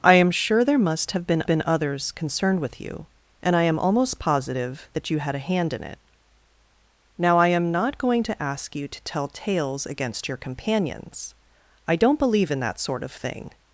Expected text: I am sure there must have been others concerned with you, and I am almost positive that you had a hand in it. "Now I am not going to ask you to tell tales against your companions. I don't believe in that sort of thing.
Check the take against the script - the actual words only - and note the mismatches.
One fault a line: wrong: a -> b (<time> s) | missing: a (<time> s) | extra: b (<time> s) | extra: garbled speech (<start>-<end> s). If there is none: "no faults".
extra: been (1.5 s)